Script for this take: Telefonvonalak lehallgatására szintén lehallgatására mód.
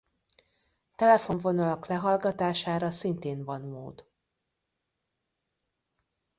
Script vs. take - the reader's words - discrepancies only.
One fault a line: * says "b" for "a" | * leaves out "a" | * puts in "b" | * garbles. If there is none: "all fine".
* says "van" for "lehallgatására"